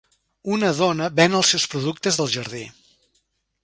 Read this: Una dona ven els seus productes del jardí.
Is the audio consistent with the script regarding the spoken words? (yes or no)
yes